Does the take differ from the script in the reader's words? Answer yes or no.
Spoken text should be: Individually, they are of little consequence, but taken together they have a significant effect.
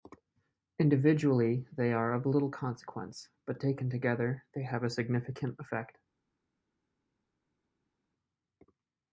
no